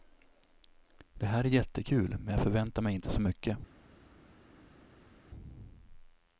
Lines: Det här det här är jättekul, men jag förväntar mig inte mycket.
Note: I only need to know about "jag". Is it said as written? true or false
true